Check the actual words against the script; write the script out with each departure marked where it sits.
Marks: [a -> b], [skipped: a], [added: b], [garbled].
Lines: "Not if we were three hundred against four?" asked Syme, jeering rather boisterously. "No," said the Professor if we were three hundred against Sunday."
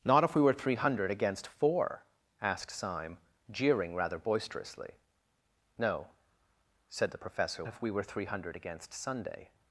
"Not if we were three hundred against four?" asked Syme, jeering rather boisterously. "No," said the Professor if we were three hundred against Sunday."